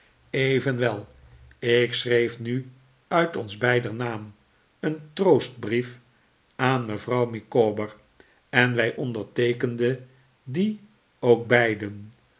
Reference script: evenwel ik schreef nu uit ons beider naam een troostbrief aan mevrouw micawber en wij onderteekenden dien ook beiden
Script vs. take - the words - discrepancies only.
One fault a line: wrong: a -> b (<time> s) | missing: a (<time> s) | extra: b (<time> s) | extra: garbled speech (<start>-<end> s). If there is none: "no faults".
no faults